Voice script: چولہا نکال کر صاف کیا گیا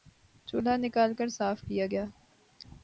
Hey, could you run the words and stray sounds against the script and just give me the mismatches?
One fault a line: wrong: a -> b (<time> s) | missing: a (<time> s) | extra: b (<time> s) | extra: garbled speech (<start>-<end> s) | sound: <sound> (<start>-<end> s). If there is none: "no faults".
no faults